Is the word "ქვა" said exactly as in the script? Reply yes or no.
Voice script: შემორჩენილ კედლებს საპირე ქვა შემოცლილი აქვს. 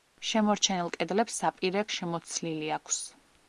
no